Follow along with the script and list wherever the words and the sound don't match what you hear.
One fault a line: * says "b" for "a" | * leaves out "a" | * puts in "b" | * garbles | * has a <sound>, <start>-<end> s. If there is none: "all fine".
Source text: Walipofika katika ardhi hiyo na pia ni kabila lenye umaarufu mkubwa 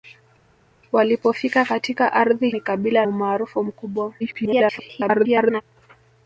* leaves out "hiyo na pia"
* leaves out "lenye"
* garbles